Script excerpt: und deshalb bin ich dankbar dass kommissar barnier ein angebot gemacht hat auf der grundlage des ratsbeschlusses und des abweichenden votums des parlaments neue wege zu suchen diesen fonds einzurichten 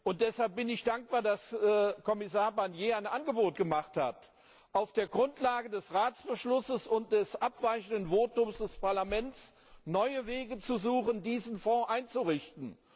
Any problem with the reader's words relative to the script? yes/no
no